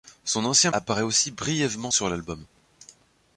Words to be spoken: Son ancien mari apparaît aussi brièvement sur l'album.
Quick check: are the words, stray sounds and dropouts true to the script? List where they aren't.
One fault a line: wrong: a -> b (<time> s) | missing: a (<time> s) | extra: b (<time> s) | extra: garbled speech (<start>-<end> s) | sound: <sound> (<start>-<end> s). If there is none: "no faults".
missing: mari (0.7 s)